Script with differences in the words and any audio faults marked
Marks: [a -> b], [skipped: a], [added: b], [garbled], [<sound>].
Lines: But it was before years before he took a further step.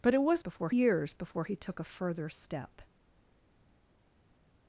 But it was before years before he took a further step.